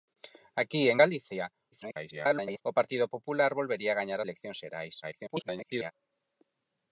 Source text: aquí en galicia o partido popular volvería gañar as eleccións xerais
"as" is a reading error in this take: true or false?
true